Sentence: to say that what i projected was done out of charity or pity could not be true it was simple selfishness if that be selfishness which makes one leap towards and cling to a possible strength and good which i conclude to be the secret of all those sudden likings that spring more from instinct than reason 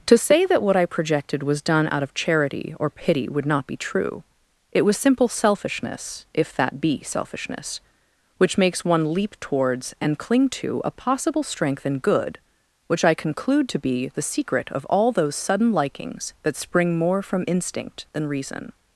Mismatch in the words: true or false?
true